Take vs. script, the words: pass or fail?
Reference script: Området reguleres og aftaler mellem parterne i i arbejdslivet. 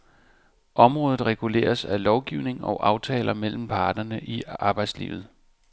fail